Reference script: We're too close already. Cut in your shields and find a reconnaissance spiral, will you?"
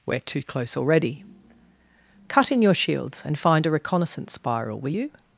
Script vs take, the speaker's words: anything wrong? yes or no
no